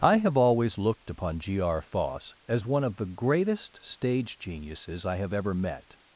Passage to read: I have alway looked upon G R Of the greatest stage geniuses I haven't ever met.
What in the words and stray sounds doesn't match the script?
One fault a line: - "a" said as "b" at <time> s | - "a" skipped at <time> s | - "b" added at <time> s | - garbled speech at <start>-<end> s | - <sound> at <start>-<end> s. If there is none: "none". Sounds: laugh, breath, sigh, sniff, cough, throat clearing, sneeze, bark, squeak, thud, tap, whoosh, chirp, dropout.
- "alway" said as "always" at 0.3 s
- "Foss as one" added at 1.8 s
- "haven't" said as "have" at 5.2 s